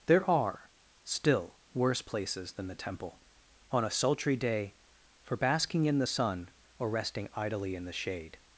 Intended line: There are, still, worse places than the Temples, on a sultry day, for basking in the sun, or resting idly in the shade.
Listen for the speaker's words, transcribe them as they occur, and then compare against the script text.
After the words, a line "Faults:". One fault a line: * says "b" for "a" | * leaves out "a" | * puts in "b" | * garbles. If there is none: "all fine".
There are, still, worse places than the Temple, on a sultry day, for basking in the sun, or resting idly in the shade.
Faults:
* says "Temple" for "Temples"